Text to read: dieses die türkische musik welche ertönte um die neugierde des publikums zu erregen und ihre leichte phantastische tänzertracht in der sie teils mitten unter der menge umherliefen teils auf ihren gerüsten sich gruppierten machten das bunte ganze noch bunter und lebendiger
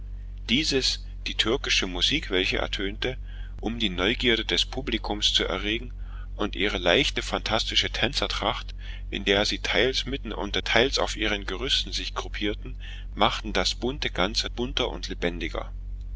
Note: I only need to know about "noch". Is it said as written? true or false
false